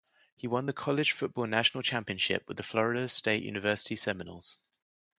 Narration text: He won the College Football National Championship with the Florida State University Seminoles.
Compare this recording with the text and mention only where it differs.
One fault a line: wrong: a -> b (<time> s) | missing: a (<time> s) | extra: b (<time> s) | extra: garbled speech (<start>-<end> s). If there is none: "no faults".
no faults